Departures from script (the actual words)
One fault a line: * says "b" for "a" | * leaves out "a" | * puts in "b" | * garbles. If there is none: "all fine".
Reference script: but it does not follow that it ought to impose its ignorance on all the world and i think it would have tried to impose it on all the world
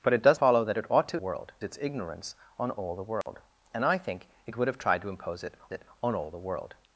* leaves out "not"
* says "world" for "impose"
* puts in "it"